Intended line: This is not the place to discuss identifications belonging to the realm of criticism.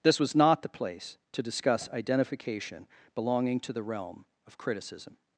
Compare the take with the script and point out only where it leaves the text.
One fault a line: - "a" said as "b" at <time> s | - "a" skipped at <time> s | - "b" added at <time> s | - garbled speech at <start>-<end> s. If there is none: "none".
- "is" said as "was" at 0.2 s
- "identifications" said as "identification" at 1.9 s